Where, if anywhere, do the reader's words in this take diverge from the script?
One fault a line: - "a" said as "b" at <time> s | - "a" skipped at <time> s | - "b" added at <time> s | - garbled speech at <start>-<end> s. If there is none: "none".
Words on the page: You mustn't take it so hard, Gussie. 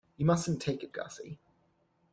- "so hard" skipped at 0.9 s